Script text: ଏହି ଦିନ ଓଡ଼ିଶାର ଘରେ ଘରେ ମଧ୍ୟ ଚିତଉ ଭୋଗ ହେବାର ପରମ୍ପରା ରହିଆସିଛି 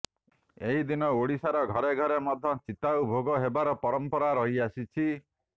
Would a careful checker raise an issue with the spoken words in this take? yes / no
no